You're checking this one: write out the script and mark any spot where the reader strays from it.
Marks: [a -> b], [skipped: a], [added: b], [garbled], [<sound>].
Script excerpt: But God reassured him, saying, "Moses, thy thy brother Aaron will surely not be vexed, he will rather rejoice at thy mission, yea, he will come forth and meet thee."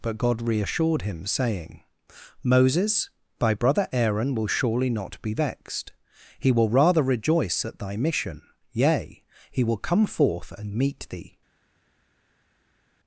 But God reassured him, saying, "Moses, thy [skipped: thy] brother Aaron will surely not be vexed, he will rather rejoice at thy mission, yea, he will come forth and meet thee."